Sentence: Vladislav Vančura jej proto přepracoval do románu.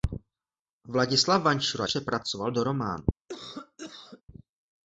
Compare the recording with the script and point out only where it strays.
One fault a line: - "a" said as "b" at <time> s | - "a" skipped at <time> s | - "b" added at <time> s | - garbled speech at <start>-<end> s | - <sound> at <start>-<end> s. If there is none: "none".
- "jej proto" skipped at 1.9 s
- cough at 3.3-4.2 s